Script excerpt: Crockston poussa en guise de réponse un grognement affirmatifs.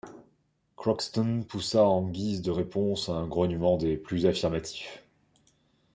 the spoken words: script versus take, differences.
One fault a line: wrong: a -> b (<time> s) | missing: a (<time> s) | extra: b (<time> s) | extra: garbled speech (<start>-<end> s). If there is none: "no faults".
extra: des plus (3.8 s)